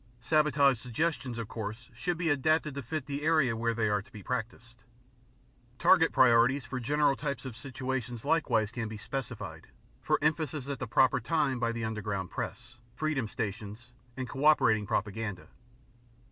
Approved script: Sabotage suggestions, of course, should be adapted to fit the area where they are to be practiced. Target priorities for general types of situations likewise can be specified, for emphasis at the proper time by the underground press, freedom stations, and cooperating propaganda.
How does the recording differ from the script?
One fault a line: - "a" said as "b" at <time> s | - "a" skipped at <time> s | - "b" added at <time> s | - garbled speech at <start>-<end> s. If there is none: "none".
none